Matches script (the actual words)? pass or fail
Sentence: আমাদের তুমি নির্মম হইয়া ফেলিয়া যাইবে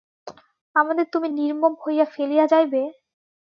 pass